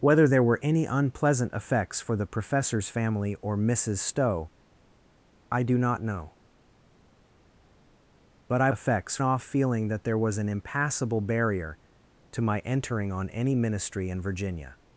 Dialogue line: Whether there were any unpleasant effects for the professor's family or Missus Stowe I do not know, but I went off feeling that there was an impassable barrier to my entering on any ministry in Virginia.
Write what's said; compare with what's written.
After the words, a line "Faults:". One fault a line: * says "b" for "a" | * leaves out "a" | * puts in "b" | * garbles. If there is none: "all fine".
Whether there were any unpleasant effects for the professor's family or Missus Stowe I do not know, but I effects off feeling that there was an impassable barrier to my entering on any ministry in Virginia.
Faults:
* says "effects" for "went"